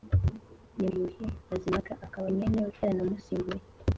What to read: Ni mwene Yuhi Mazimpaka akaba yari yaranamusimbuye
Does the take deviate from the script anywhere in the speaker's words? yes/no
yes